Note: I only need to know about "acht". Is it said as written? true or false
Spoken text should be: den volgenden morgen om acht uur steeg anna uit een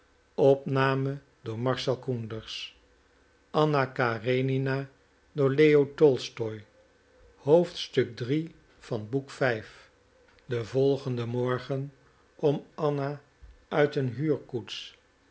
false